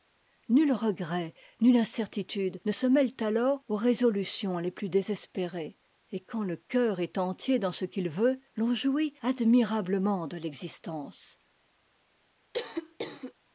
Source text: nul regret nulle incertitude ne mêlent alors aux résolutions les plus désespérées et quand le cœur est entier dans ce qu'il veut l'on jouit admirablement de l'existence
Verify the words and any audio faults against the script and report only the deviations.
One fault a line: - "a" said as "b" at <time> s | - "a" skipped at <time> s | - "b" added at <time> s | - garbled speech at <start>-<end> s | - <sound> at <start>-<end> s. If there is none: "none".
- "se" added at 2.7 s
- cough at 12.5-13.3 s